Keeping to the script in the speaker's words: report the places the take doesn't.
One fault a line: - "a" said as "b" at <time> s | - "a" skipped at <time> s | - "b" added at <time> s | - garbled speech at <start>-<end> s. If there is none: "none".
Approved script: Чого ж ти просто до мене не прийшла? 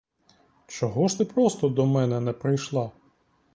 none